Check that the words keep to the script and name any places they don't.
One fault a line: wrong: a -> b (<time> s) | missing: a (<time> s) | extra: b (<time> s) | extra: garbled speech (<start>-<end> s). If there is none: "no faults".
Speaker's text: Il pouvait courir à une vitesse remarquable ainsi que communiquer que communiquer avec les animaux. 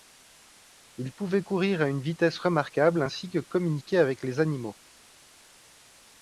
missing: que communiquer (4.0 s)